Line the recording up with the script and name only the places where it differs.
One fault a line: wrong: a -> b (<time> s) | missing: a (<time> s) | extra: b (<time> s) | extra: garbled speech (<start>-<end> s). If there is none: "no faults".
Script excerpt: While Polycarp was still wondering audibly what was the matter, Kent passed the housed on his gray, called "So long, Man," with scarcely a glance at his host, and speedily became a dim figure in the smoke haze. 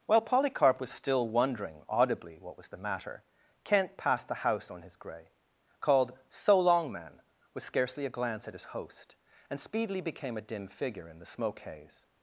wrong: housed -> house (4.4 s)